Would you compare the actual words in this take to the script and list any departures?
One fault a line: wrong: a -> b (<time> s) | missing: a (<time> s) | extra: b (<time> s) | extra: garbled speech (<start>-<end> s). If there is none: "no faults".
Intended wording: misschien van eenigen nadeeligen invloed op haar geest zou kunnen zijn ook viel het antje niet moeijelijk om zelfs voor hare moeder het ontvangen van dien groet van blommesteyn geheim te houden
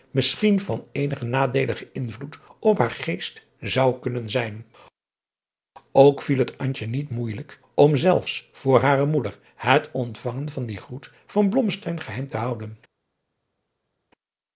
no faults